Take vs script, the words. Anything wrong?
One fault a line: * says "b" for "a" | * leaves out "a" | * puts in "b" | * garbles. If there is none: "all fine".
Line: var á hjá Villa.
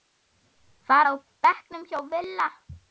* puts in "bekknum"